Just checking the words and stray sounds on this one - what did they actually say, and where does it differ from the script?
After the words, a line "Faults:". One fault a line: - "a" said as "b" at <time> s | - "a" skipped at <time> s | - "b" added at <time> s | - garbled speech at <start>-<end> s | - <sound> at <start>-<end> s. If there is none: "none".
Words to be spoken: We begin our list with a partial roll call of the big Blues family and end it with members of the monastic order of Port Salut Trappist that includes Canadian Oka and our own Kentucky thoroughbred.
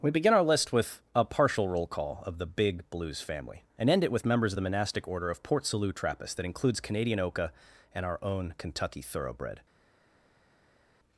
We begin our list with a partial roll call of the big Blues family and end it with members of the monastic order of Port Salut Trappist that includes Canadian Oka and our own Kentucky thoroughbred.
Faults:
none